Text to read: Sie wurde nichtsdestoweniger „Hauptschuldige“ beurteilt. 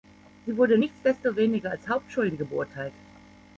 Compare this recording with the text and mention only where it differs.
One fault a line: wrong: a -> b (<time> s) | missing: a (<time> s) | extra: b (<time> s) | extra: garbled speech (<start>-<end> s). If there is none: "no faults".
extra: als (1.7 s)